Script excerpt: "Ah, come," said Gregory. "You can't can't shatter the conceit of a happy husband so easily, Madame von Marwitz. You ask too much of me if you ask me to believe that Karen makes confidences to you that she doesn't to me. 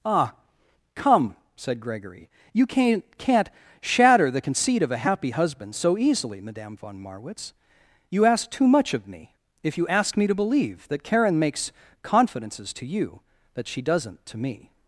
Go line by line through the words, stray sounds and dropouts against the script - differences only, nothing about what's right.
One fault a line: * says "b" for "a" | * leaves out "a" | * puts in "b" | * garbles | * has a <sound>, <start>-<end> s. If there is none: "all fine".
all fine